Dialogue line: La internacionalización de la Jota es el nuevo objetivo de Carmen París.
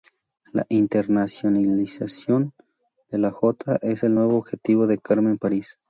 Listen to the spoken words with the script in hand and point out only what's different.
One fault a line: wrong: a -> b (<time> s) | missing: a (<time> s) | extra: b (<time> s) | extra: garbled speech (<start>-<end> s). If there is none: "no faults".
no faults